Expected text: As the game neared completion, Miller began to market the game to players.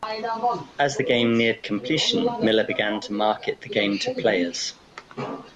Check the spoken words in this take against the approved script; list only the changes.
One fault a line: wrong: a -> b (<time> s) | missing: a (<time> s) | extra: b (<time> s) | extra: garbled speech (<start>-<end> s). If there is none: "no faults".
no faults